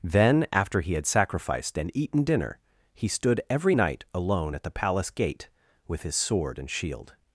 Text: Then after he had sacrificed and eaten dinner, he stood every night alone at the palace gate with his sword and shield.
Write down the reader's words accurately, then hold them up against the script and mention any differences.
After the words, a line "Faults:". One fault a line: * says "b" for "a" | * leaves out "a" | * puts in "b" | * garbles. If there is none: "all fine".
Then after he had sacrificed and eaten dinner, he stood every night alone at the palace gate with his sword and shield.
Faults:
all fine